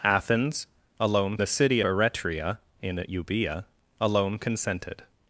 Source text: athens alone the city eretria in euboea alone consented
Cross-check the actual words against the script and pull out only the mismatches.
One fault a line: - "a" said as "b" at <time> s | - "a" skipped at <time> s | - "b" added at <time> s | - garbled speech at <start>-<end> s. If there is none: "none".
none